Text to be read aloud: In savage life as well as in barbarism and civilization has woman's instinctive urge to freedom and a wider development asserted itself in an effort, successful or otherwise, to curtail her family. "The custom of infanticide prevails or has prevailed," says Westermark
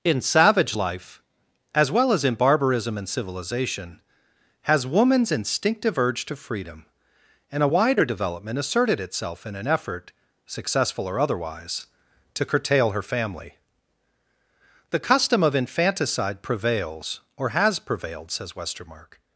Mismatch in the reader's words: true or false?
false